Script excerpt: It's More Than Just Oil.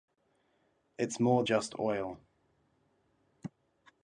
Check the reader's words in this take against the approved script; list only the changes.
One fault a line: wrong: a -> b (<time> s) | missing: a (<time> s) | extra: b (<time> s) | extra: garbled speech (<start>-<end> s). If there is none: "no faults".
missing: Than (1.4 s)